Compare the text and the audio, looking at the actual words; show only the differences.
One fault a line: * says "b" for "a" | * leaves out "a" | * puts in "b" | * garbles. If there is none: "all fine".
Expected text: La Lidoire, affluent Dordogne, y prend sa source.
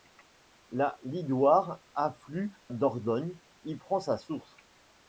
all fine